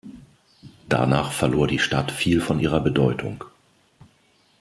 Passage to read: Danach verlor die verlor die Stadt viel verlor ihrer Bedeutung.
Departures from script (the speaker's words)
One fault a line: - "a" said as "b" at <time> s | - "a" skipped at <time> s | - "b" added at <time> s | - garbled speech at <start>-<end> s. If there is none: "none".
- "verlor die" skipped at 1.8 s
- "verlor" said as "von" at 2.4 s